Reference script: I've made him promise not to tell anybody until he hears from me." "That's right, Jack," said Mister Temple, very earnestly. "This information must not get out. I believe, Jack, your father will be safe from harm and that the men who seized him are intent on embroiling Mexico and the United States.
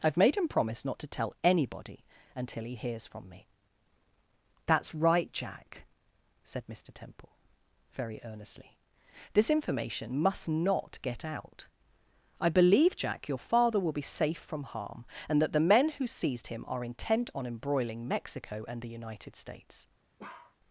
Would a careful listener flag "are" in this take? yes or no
no